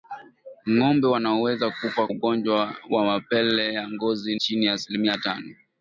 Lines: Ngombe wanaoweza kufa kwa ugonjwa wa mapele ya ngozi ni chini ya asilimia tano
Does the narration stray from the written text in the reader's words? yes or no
yes